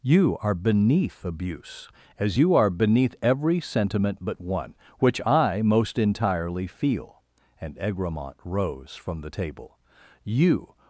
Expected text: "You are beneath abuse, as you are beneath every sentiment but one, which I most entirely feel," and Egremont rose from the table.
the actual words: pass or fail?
fail